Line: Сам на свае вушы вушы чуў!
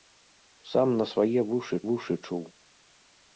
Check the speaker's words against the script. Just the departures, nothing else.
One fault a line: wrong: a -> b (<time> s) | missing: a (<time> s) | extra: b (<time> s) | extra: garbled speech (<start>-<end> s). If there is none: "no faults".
no faults